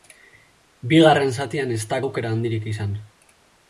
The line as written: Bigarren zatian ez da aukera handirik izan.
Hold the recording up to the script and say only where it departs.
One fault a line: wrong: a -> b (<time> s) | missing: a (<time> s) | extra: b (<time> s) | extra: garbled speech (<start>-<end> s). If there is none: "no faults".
no faults